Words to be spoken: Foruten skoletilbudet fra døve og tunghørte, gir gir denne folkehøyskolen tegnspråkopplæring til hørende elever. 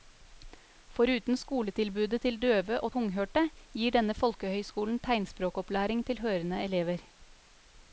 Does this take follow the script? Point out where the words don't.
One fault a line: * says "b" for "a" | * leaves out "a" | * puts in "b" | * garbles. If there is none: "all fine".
* says "til" for "fra"
* leaves out "gir"